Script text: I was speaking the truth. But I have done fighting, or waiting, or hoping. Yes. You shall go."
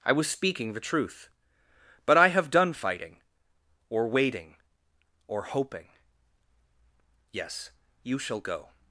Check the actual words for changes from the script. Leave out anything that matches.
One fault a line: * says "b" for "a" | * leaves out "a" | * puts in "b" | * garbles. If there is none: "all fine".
all fine